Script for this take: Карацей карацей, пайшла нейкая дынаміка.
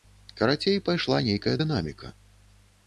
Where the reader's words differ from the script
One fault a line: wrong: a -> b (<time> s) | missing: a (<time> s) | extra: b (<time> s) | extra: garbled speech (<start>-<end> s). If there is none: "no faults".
missing: карацей (0.8 s)